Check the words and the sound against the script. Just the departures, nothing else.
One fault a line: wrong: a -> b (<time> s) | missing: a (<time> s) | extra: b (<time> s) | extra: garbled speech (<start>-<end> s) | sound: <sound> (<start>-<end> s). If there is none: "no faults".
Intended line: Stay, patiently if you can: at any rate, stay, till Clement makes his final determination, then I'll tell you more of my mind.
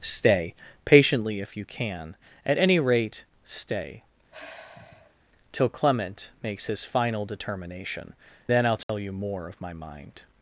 sound: sigh (4.3-5.2 s)
sound: dropout (8.8-8.9 s)